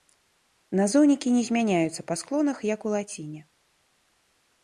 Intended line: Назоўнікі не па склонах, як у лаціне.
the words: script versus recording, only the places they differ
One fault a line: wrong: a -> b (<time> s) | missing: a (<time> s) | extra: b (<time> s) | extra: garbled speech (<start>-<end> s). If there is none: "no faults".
extra: змяняюцца (1.5 s)